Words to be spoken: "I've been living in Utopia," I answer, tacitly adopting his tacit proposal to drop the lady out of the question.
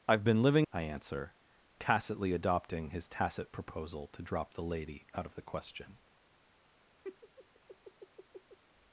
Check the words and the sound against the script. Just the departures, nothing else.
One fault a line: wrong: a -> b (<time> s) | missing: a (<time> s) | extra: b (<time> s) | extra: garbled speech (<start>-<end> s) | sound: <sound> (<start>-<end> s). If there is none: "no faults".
missing: in Utopia (0.7 s)
sound: laugh (7.0-8.6 s)